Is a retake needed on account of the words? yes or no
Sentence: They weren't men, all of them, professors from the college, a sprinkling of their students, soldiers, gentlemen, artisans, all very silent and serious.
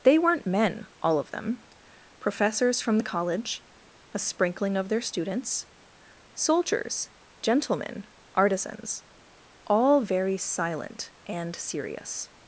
no